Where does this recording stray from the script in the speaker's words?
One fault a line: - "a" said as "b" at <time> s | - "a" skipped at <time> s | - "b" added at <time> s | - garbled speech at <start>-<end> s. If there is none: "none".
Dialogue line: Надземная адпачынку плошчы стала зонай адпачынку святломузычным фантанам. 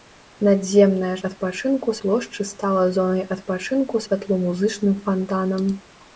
none